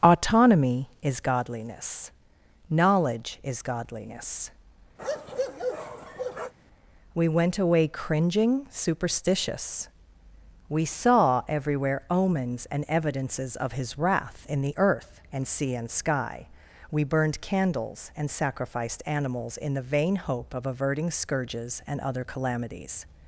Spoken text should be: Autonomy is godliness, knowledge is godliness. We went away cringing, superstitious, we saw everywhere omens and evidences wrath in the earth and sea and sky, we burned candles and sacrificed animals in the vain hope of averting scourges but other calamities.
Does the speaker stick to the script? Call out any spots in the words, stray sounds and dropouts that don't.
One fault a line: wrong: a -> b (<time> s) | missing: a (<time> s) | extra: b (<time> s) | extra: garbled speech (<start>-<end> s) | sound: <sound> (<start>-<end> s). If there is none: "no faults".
sound: bark (5.0-6.5 s)
extra: of his (13.6 s)
wrong: but -> and (21.9 s)